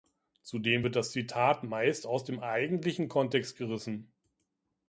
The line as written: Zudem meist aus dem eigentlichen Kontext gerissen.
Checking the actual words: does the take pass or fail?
fail